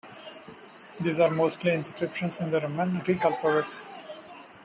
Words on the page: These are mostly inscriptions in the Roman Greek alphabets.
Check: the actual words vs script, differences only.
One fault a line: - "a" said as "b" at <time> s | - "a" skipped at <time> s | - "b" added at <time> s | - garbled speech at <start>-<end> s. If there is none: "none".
none